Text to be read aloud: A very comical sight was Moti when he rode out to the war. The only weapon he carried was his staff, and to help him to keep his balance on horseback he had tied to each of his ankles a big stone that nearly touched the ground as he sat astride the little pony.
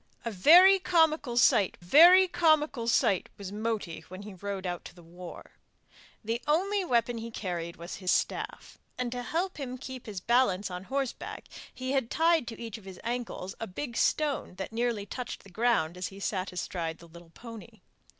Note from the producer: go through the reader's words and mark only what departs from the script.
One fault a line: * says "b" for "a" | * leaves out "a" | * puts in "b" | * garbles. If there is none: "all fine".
* puts in "very comical sight"